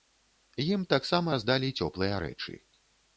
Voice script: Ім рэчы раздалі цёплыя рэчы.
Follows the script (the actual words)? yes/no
no